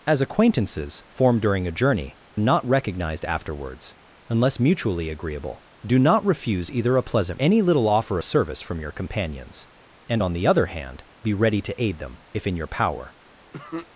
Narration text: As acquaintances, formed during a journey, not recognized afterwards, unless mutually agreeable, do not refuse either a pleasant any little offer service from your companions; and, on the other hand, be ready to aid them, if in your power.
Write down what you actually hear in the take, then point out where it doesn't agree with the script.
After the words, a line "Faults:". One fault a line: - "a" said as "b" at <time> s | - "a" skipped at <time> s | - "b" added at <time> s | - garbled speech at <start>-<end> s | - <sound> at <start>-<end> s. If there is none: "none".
As acquaintances, formed during a journey, not recognized afterwards, unless mutually agreeable, do not refuse either a pleasant any little offer service from your companions; and, on the other hand, be ready to aid them, if in your power.
Faults:
- cough at 13.5-13.9 s